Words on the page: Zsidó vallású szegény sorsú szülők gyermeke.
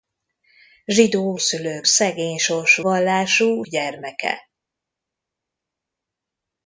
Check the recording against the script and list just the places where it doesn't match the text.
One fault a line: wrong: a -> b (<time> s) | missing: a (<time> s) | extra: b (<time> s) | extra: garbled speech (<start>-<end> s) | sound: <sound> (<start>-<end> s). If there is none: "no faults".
wrong: vallású -> szülők (1.4 s)
wrong: szülők -> vallású (2.8 s)